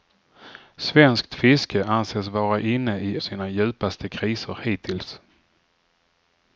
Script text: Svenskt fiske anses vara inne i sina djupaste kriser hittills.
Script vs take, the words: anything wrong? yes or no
no